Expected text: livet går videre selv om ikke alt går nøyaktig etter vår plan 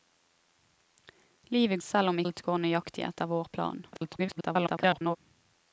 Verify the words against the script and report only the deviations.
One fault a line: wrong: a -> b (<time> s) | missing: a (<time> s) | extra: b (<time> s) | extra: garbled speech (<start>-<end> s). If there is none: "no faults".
missing: går videre (1.8 s)
missing: ikke (2.2 s)
extra: garbled speech (3.9-5.2 s)